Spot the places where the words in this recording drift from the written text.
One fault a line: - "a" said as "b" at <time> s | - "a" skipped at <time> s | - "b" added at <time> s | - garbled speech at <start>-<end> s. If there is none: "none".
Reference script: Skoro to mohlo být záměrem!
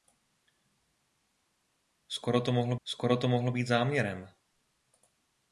- "skoro to mohlo" added at 2.8 s